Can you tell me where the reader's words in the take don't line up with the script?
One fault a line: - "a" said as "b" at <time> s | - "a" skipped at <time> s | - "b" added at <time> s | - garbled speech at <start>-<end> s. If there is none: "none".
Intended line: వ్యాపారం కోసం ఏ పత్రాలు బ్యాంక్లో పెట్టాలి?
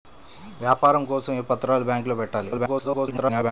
- garbled speech at 2.5-3.5 s